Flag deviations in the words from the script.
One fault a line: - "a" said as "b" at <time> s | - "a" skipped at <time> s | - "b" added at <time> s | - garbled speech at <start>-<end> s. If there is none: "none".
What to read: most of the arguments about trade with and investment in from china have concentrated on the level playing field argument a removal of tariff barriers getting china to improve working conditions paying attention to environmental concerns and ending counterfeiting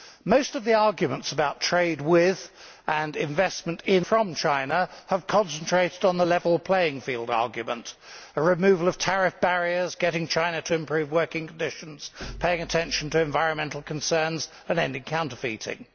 none